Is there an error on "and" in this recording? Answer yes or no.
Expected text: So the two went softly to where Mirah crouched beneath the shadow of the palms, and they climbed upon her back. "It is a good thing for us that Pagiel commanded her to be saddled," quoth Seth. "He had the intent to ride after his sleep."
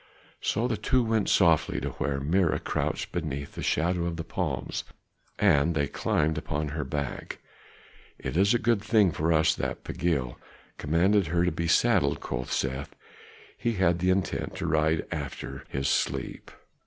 no